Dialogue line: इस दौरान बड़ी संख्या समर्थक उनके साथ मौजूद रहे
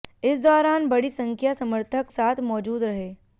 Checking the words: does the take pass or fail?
fail